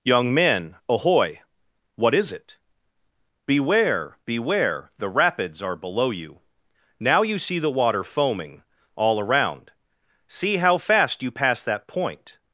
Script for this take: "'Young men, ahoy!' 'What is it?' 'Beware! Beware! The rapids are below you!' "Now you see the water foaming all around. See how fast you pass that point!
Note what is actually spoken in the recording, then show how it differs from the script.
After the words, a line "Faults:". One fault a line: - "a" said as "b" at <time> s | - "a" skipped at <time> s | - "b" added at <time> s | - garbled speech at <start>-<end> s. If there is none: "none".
"'Young men, ahoy!' 'What is it?' 'Beware! Beware! The rapids are below you!' "Now you see the water foaming all around. See how fast you pass that point!
Faults:
none